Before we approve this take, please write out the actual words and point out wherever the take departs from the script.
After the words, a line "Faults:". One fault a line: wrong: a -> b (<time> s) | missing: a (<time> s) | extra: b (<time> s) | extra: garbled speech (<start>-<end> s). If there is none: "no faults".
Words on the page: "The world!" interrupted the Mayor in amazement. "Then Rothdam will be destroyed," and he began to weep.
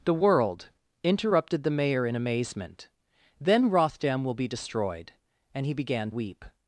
"The world!" interrupted the Mayor in amazement. "Then Rothdam will be destroyed," and he began weep.
Faults:
missing: to (6.1 s)